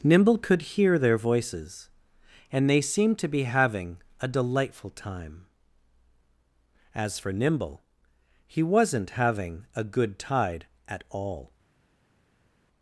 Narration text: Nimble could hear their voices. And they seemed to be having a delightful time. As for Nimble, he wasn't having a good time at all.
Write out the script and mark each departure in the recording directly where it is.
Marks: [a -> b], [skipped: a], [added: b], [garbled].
Nimble could hear their voices. And they seemed to be having a delightful time. As for Nimble, he wasn't having a good [time -> tide] at all.